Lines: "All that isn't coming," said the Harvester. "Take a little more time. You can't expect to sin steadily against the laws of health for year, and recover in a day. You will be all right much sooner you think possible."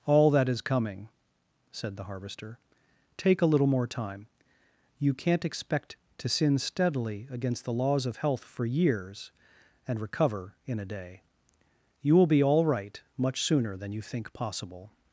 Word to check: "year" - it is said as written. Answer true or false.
false